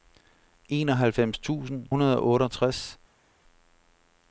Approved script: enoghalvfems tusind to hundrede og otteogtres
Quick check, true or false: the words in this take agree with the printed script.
false